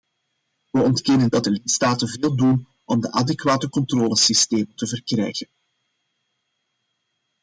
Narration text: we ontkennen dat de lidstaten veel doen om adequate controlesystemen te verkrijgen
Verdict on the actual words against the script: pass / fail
pass